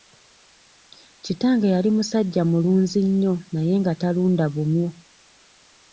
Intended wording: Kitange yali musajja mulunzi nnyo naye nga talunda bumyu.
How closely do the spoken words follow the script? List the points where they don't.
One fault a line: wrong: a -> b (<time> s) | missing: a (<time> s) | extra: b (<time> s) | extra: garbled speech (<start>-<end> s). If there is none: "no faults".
no faults